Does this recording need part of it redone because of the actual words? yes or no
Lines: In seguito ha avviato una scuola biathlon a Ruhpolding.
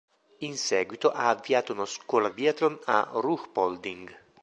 no